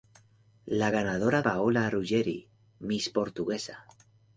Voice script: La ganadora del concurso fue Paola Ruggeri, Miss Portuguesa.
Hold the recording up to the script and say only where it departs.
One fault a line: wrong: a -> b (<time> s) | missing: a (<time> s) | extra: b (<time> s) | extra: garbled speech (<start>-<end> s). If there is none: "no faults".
missing: del concurso fue (1.4 s)